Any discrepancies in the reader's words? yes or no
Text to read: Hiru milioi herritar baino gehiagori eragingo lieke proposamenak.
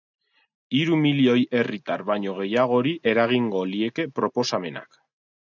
no